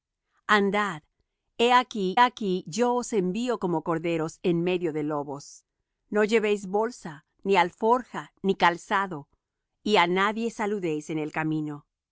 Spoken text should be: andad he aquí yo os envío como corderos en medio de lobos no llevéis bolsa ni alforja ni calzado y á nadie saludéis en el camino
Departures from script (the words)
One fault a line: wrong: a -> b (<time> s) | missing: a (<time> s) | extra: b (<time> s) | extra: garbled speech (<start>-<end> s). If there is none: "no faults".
extra: aquí (2.2 s)